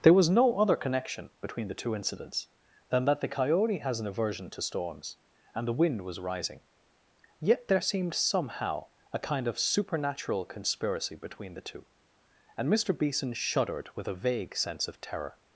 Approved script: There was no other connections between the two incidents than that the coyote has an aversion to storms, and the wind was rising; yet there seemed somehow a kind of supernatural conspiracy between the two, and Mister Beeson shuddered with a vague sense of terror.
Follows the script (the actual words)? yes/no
no